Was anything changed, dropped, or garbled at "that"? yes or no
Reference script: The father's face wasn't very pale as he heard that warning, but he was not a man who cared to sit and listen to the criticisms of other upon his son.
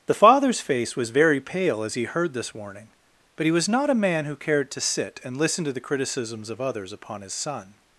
yes